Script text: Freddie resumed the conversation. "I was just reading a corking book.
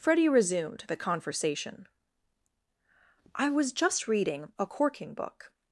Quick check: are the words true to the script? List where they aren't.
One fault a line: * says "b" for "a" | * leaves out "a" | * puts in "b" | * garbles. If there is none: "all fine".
all fine